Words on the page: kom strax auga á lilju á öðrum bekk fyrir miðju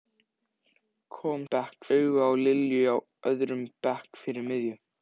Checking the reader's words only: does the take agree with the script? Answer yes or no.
no